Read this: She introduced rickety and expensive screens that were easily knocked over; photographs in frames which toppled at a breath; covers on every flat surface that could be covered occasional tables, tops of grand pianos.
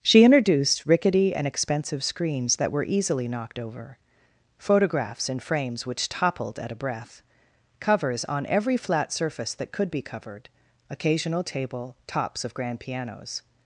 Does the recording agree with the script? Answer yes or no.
no